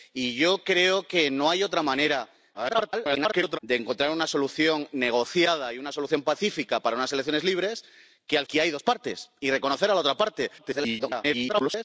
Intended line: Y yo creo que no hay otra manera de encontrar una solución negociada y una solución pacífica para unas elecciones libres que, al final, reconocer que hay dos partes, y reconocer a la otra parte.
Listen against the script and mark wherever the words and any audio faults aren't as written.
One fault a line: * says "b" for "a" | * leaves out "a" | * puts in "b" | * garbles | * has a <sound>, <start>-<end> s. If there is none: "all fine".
* garbles
* leaves out "final reconocer"
* garbles